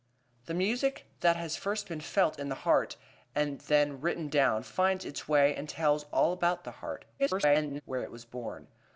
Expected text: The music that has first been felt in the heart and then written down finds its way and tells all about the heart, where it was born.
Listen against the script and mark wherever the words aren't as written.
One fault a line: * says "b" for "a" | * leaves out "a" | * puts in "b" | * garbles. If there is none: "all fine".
* garbles